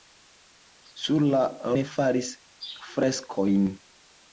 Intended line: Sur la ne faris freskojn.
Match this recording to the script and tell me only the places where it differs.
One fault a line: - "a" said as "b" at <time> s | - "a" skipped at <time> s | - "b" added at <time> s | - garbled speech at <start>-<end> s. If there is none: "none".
none